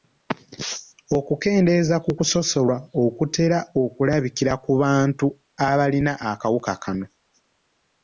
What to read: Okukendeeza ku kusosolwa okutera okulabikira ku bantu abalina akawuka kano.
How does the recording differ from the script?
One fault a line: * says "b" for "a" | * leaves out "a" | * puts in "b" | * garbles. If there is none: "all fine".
all fine